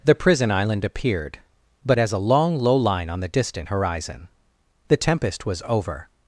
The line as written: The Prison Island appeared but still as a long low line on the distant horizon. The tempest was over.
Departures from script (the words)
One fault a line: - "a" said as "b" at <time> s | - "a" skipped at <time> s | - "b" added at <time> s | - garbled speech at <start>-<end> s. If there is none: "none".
- "still" skipped at 2.0 s